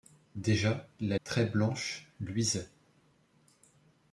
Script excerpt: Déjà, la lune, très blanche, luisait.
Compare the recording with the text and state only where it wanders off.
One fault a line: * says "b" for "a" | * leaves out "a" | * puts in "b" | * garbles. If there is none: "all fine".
* leaves out "lune"